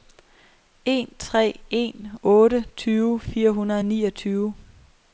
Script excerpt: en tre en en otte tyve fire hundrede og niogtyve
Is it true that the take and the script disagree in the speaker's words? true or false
true